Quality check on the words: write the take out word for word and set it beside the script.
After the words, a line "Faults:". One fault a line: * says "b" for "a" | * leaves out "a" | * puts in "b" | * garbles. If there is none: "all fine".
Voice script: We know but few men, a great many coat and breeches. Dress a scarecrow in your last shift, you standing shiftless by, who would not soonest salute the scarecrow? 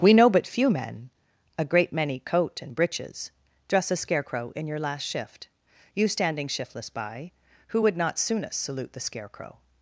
We know but few men, a great many coat and breeches. Dress a scarecrow in your last shift, you standing shiftless by, who would not soonest salute the scarecrow?
Faults:
all fine